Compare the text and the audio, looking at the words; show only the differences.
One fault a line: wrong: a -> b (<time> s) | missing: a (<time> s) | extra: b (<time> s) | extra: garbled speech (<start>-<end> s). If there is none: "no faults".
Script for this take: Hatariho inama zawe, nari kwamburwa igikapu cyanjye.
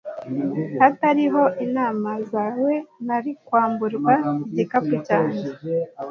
no faults